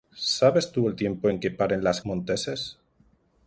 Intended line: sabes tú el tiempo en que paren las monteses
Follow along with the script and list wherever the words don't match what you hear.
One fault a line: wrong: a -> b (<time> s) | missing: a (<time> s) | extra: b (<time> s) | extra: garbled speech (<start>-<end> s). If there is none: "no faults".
no faults